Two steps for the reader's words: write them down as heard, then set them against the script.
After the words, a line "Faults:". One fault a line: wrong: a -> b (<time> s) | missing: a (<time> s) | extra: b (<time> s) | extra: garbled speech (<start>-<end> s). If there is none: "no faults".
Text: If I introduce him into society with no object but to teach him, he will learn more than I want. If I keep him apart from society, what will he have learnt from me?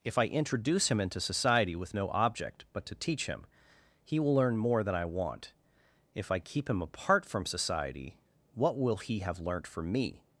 If I introduce him into society with no object but to teach him, he will learn more than I want. If I keep him apart from society, what will he have learnt from me?
Faults:
no faults